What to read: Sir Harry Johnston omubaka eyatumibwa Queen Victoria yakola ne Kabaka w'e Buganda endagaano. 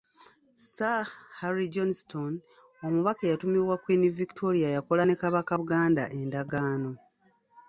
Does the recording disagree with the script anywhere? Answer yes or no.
yes